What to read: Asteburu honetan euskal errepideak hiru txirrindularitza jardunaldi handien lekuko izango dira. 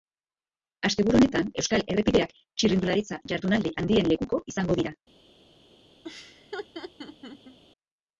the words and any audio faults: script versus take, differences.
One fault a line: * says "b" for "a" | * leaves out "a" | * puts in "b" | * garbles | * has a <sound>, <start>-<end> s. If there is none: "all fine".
* leaves out "hiru"
* has a laugh, 6.0-7.6 s